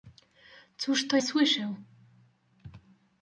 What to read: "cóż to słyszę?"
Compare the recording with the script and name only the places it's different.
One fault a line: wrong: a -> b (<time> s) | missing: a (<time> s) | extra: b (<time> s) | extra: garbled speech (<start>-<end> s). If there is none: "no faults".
no faults